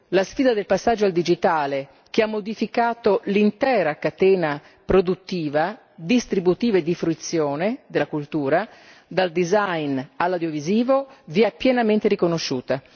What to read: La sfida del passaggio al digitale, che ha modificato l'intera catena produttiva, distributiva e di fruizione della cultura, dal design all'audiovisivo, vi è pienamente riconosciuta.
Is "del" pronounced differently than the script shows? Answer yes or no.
no